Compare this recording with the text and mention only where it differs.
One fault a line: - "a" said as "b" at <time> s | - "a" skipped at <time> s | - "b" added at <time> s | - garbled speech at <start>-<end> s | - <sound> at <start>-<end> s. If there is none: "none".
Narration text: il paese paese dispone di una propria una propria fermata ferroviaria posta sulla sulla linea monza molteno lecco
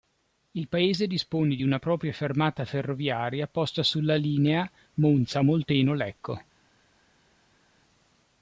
- "paese" skipped at 1.1 s
- "una propria" skipped at 2.1 s
- "sulla" skipped at 4.1 s